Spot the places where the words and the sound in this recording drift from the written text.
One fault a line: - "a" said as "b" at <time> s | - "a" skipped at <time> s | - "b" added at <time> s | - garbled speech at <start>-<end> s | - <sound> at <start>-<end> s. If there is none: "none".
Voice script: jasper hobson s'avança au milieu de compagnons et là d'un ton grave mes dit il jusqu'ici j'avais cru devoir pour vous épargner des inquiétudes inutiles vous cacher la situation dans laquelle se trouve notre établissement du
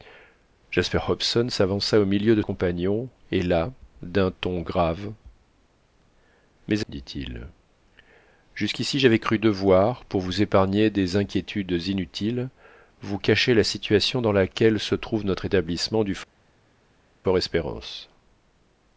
none